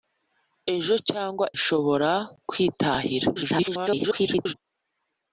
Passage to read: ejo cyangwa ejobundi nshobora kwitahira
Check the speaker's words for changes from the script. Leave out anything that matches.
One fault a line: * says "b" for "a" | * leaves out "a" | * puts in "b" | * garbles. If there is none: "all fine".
* leaves out "ejobundi"
* garbles